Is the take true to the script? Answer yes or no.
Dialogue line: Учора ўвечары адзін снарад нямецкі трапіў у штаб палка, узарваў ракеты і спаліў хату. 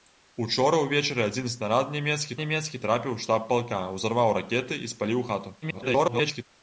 no